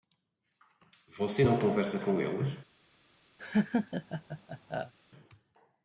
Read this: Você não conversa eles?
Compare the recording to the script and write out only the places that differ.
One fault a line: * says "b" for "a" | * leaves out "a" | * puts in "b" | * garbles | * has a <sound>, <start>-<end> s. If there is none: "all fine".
* puts in "com"
* has a laugh, 3.4-4.9 s